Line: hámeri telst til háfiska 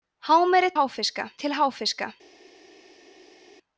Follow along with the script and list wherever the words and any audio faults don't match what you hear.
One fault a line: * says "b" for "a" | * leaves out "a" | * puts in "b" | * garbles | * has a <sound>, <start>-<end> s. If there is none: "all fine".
* says "háfiska" for "telst"